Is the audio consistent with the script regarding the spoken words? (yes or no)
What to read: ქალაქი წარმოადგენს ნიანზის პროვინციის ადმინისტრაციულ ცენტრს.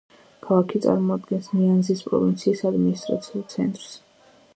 yes